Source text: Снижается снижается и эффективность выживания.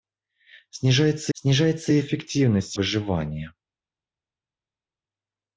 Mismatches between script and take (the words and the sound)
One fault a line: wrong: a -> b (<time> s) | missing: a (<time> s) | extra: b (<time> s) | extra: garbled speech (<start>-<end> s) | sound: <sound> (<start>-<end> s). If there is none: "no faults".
no faults